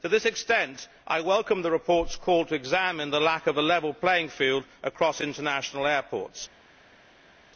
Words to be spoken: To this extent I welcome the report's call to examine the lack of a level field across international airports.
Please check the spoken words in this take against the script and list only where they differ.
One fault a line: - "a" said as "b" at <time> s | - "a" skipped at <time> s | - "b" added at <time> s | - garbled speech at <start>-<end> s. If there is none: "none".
- "playing" added at 3.9 s